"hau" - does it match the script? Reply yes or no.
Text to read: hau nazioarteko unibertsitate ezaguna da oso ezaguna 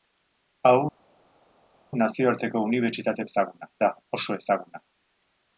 yes